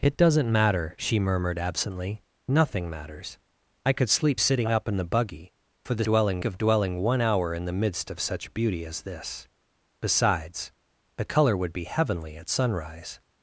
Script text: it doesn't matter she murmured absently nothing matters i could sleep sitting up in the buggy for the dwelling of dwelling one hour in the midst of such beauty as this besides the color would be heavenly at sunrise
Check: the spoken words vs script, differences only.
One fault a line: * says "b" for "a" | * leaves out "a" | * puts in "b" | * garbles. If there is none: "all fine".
all fine